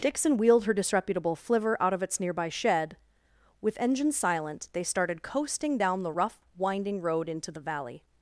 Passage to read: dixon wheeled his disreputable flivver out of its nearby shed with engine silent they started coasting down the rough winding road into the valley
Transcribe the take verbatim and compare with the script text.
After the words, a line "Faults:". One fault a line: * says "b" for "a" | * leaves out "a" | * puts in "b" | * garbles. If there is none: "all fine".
dixon wheeled her disreputable flivver out of its nearby shed with engine silent they started coasting down the rough winding road into the valley
Faults:
* says "her" for "his"